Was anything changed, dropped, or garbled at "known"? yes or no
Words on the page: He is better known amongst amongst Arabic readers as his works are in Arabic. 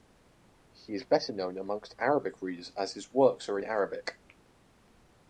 no